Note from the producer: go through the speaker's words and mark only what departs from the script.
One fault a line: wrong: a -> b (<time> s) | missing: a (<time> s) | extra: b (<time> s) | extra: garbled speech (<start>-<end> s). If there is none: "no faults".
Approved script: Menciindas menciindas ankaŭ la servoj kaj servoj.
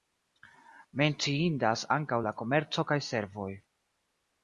missing: menciindas (1.9 s)
wrong: servoj -> komerco (2.4 s)